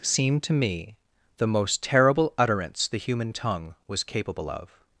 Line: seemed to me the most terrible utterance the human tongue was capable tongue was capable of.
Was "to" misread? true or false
false